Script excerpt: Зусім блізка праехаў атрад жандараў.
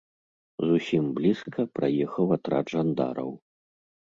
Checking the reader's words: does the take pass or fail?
pass